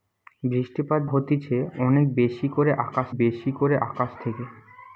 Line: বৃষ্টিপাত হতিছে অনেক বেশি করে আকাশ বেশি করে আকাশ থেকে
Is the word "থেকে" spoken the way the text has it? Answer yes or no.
yes